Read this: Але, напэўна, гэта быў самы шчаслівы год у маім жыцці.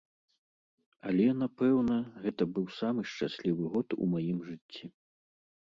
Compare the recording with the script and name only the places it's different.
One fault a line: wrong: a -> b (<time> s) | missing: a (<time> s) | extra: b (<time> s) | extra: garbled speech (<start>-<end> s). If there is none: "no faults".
no faults